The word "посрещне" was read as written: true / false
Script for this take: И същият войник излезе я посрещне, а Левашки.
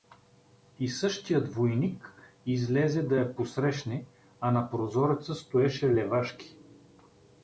true